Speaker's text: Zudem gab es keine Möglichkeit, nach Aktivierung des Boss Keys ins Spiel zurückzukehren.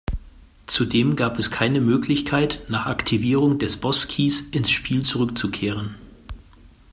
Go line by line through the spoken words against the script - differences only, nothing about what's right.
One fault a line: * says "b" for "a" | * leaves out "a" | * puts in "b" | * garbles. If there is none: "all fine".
all fine